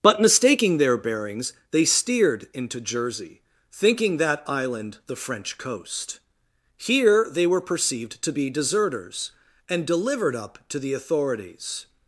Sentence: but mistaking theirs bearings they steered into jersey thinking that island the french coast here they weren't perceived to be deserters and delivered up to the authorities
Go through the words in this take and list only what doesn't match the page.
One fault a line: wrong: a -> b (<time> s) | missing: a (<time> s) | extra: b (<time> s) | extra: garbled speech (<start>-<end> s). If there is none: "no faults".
wrong: theirs -> their (0.8 s)
wrong: weren't -> were (7.5 s)